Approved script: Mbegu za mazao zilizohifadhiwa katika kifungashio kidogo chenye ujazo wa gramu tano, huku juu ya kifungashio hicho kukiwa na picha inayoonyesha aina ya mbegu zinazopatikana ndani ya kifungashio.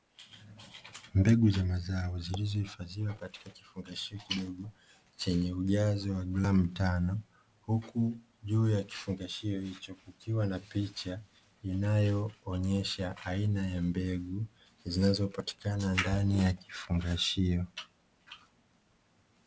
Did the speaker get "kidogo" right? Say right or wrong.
right